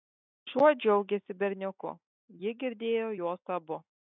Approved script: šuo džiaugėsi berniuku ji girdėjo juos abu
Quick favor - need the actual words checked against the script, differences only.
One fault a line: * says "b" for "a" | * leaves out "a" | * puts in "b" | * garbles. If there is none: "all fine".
all fine